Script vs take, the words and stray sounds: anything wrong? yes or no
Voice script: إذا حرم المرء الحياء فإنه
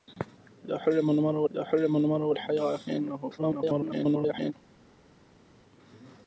yes